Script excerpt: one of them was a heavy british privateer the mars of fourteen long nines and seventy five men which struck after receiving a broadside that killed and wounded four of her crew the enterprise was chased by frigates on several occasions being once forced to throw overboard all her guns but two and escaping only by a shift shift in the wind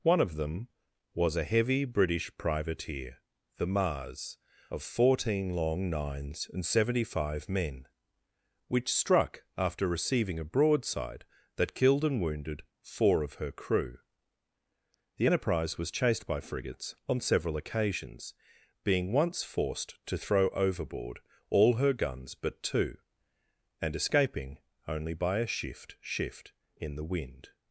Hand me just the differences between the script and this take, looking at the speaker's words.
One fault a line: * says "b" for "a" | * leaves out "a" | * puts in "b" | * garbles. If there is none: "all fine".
all fine